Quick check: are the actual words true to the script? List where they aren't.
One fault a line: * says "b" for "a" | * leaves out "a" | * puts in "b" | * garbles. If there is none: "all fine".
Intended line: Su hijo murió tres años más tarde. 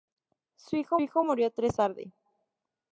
* puts in "hijo"
* leaves out "años más"